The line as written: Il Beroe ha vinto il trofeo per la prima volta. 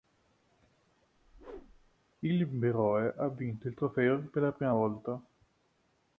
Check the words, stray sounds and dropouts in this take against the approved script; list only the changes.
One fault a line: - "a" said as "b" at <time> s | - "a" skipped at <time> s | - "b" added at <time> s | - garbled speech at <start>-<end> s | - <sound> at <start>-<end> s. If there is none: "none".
- whoosh at 1.2-2.0 s